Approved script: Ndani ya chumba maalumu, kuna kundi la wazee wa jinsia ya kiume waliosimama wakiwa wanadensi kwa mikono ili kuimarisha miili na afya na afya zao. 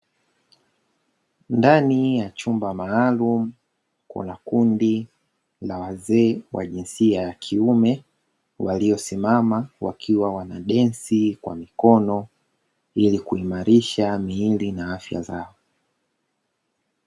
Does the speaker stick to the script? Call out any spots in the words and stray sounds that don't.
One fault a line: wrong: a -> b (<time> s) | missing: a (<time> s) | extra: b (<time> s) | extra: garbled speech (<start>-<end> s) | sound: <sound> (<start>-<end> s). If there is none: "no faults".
missing: na afya (15.2 s)